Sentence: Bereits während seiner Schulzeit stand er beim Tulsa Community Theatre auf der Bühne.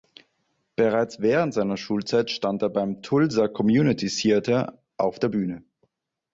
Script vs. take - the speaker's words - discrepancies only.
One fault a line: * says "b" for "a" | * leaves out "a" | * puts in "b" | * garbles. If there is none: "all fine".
all fine